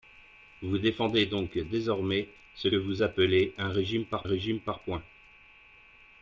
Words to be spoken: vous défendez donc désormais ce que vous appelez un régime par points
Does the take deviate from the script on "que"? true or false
true